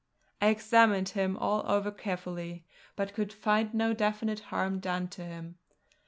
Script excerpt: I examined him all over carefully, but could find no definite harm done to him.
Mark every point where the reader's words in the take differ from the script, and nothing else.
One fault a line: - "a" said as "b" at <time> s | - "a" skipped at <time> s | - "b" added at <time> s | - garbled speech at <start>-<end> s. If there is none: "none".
none